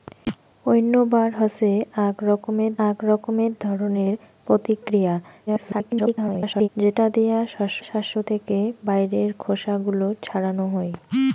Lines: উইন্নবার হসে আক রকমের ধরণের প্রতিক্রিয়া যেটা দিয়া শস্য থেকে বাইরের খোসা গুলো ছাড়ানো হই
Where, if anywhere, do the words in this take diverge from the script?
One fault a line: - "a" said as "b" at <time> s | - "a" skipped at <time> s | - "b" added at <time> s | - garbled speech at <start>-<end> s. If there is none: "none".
- "আক রকমের" added at 2.9 s
- garbled speech at 5.5-6.7 s
- "শস্য" added at 7.8 s